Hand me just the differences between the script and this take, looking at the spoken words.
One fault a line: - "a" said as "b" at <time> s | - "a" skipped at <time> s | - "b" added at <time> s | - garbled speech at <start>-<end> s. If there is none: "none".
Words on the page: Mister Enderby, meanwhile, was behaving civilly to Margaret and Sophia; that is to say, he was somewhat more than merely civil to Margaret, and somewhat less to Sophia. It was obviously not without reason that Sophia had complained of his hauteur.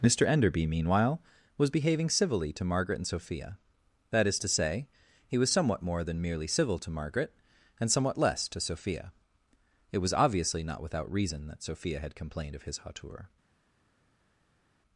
none